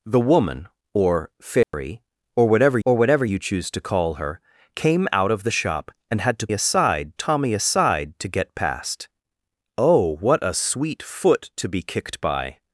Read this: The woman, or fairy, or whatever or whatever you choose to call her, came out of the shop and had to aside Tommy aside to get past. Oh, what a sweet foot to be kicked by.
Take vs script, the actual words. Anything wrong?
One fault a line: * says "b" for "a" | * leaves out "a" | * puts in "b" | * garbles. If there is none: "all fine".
all fine